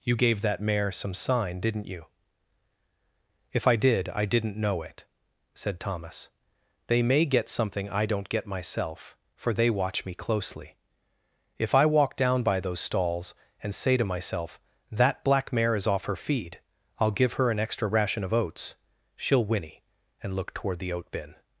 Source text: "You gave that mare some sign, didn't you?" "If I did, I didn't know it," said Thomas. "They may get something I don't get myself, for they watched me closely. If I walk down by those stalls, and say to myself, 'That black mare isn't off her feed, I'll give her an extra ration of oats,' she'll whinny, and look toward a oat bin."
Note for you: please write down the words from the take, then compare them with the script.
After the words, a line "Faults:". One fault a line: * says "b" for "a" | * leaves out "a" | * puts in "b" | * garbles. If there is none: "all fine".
"You gave that mare some sign, didn't you?" "If I did, I didn't know it," said Thomas. "They may get something I don't get myself, for they watch me closely. If I walk down by those stalls, and say to myself, 'That black mare is off her feed, I'll give her an extra ration of oats,' she'll whinny, and look toward the oat bin."
Faults:
* says "watch" for "watched"
* says "is" for "isn't"
* says "the" for "a"